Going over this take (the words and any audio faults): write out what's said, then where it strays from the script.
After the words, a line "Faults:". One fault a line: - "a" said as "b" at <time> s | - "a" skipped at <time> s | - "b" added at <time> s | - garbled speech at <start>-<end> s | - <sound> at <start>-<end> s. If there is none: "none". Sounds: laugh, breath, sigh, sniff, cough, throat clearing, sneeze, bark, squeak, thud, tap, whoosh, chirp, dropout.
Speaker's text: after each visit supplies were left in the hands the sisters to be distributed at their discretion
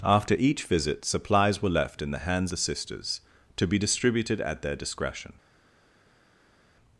after each visit supplies were left in the hands the sisters to be distributed at their discretion
Faults:
none